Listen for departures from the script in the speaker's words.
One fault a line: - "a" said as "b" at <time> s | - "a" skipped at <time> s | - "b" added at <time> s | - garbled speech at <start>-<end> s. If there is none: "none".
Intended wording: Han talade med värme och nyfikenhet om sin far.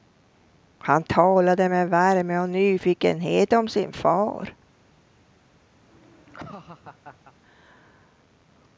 none